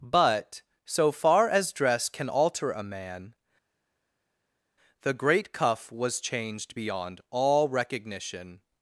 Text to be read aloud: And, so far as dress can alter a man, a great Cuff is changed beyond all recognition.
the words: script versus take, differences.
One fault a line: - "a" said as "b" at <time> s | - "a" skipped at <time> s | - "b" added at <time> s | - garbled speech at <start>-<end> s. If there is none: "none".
- "And" said as "But" at 0.0 s
- "a" said as "the" at 5.0 s
- "is" said as "was" at 5.9 s